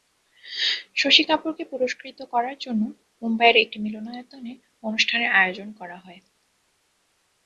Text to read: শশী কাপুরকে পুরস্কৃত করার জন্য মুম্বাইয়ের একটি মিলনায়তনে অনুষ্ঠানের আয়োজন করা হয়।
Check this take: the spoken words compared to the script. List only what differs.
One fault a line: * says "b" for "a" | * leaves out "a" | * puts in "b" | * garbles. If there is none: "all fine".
all fine